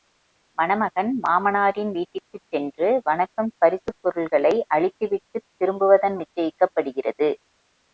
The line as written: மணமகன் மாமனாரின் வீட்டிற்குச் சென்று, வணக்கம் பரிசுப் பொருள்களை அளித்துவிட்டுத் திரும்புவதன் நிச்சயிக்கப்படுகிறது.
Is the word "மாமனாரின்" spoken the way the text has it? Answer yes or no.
yes